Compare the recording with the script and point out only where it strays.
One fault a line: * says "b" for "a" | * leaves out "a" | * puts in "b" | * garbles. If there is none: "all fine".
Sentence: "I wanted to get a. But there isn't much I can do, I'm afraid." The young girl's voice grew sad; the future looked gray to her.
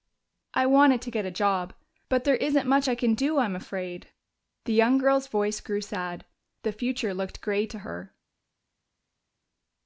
* puts in "job"